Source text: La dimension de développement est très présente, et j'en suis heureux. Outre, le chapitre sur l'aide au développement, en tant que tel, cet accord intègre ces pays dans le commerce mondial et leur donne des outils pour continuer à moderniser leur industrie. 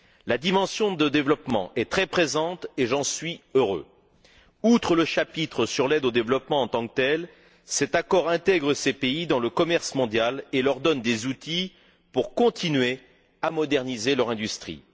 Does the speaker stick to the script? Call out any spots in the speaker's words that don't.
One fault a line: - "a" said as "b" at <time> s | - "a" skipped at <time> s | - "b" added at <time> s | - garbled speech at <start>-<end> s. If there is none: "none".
none